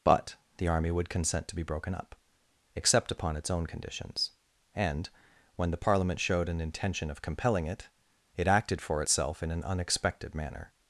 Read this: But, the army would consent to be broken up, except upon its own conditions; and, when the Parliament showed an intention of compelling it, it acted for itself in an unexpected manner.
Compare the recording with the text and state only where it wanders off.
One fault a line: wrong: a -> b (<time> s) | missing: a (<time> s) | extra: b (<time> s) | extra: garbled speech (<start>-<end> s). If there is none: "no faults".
no faults